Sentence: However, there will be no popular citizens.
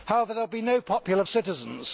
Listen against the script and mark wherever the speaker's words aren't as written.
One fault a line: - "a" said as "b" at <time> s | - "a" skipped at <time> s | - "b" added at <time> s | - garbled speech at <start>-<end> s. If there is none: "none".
none